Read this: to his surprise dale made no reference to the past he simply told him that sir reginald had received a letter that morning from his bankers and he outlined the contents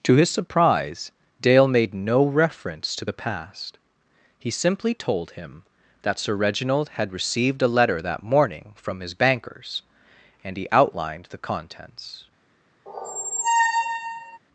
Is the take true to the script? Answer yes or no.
yes